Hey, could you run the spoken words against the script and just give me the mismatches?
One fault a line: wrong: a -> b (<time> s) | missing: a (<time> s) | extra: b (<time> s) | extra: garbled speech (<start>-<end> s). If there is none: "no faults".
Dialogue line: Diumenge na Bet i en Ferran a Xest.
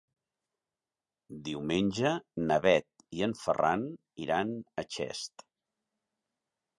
extra: iran (4.3 s)